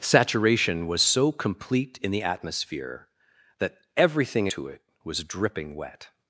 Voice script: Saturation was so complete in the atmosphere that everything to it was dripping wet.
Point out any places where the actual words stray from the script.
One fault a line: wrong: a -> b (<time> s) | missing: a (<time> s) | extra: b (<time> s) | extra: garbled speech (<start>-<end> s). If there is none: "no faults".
no faults